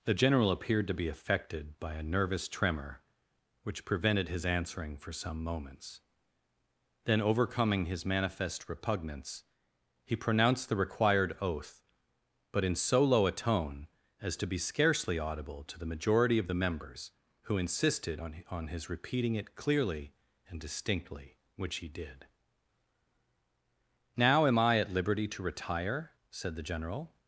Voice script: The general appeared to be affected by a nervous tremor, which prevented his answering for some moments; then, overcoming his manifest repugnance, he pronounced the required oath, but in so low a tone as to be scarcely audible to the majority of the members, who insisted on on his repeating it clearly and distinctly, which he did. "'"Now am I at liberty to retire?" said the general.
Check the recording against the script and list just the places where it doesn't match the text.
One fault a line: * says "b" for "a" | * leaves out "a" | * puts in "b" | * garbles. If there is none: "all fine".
all fine